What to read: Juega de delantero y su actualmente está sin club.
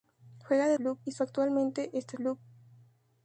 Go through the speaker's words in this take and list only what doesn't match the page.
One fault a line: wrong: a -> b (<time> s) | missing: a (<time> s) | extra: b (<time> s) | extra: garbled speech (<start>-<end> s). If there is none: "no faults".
wrong: delantero -> club (0.7 s)
missing: sin (2.2 s)